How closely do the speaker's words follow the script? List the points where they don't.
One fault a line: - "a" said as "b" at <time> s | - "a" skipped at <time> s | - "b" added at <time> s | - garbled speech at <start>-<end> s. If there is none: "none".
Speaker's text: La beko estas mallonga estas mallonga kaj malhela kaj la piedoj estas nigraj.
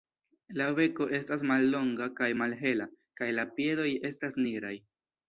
- "estas mallonga" skipped at 2.1 s